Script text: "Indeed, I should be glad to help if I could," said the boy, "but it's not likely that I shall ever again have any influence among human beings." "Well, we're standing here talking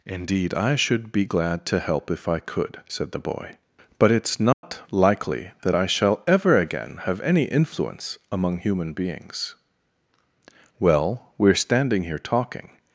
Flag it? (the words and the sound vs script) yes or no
yes